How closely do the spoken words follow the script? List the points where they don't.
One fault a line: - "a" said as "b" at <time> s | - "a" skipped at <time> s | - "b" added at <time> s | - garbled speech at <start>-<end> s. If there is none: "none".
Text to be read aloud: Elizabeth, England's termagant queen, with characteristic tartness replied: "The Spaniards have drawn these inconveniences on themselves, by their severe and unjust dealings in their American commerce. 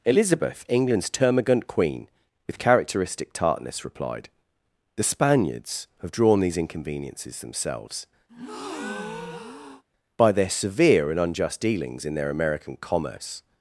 - "on" skipped at 7.4 s